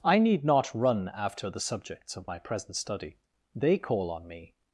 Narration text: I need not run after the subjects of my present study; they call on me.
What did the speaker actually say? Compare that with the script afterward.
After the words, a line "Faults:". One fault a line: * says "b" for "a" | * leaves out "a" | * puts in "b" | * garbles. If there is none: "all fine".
I need not run after the subjects of my present study; they call on me.
Faults:
all fine